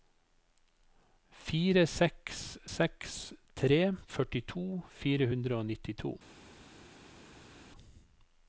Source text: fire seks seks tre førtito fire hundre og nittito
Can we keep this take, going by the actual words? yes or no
yes